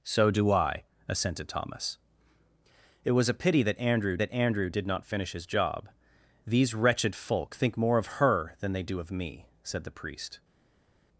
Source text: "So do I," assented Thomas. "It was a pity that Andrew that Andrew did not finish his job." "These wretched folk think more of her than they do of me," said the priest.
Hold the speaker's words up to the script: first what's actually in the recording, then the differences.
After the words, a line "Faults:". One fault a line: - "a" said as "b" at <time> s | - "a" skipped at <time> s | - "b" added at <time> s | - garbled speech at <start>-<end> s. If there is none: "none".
"So do I," assented Thomas. "It was a pity that Andrew that Andrew did not finish his job." "These wretched folk think more of her than they do of me," said the priest.
Faults:
none